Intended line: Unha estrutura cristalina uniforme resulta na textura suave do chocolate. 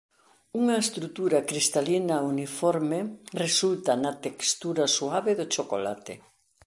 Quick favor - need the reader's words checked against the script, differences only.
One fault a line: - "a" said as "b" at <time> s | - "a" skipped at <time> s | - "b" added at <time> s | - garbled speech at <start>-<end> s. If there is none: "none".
none